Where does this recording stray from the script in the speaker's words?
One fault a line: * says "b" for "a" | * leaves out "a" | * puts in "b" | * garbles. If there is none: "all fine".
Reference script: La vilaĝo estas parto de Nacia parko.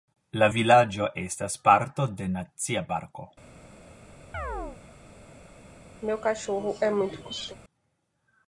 all fine